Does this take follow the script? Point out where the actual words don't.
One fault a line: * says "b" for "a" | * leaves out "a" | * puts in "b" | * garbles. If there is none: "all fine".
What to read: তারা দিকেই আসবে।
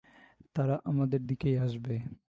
* puts in "আমাদের"